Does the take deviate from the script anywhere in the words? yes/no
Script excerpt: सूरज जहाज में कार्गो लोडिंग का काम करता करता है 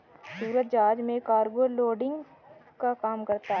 yes